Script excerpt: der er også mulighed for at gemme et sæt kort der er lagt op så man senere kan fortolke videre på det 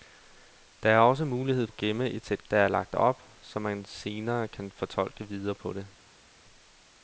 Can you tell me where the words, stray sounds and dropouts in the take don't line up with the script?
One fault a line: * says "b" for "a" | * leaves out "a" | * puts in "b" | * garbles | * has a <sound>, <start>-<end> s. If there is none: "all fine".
* leaves out "for"
* leaves out "kort"